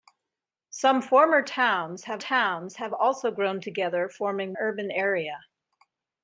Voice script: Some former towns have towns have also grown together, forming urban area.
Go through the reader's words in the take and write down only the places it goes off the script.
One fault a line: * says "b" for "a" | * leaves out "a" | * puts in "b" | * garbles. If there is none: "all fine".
all fine